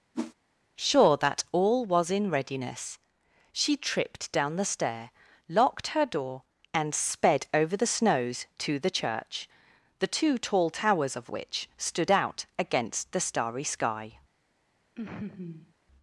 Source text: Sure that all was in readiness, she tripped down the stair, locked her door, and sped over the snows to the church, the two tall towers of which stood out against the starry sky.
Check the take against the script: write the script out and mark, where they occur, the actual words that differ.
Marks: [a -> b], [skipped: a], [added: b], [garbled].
Sure that all was in readiness, she tripped down the stair, locked her door, and sped over the snows to the church, the two tall towers of which stood out against the starry sky.